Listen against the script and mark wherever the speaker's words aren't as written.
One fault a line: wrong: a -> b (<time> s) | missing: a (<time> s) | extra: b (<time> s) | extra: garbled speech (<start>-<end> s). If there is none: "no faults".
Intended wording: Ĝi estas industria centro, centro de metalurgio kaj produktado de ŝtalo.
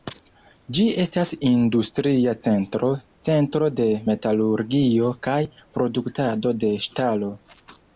no faults